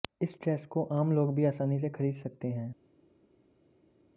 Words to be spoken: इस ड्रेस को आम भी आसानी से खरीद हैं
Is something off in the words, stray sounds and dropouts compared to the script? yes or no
yes